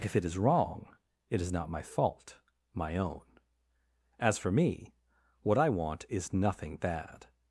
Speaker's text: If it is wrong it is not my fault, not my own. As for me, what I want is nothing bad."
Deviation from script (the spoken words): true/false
true